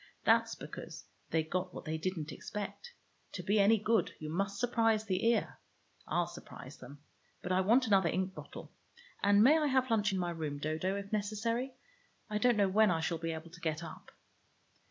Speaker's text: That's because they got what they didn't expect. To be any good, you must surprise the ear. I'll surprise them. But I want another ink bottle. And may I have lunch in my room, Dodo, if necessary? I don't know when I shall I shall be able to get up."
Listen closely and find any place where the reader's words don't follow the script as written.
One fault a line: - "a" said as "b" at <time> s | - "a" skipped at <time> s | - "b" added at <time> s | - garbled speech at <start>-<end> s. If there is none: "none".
- "I shall" skipped at 13.2 s